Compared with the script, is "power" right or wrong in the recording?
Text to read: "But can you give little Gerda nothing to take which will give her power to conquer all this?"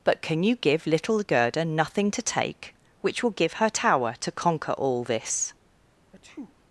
wrong